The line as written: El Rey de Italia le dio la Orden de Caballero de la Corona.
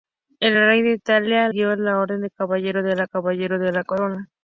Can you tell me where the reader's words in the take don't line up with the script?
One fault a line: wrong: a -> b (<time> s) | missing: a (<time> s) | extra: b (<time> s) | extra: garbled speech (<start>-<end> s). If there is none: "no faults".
missing: le (1.5 s)
extra: Caballero de la (3.0 s)